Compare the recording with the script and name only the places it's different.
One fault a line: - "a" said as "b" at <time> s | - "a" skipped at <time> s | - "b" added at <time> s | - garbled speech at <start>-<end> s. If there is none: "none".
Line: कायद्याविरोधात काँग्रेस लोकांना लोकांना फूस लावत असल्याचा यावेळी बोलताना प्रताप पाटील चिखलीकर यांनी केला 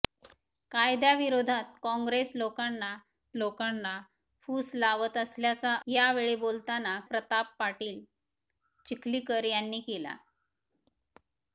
none